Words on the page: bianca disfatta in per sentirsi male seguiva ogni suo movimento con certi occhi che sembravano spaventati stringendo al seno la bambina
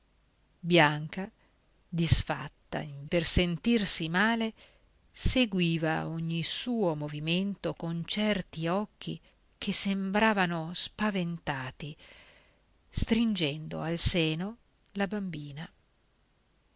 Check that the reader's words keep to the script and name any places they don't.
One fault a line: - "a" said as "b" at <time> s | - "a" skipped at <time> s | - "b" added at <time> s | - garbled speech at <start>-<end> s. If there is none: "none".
none